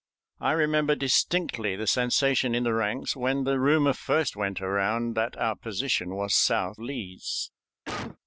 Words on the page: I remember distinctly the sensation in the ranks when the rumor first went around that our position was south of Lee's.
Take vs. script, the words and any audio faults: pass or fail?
fail